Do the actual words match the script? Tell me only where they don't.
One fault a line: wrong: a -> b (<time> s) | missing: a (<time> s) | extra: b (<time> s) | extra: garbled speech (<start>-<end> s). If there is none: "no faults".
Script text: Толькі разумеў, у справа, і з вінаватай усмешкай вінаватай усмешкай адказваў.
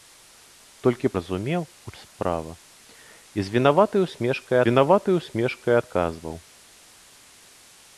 no faults